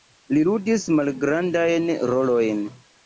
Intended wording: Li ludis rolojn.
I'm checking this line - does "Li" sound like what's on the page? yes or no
yes